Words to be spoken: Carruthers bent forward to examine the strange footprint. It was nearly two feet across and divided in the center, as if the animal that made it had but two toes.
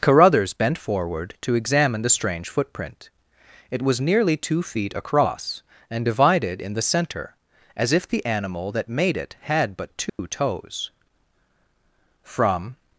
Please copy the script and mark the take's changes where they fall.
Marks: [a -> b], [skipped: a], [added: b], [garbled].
Carruthers bent forward to examine the strange footprint. It was nearly two feet across and divided in the center, as if the animal that made it had but two toes. [added: From]